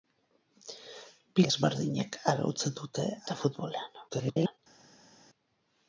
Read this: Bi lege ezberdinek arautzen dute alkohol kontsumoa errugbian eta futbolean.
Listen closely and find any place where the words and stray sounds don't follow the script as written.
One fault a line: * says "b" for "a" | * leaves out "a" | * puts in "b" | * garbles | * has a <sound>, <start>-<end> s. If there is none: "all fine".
* leaves out "lege"
* leaves out "alkohol kontsumoa errugbian"
* garbles